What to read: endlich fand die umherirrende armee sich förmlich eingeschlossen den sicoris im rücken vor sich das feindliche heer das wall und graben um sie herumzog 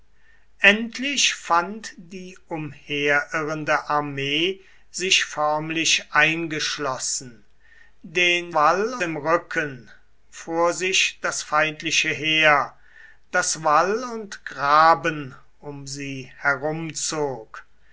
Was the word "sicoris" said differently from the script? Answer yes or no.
yes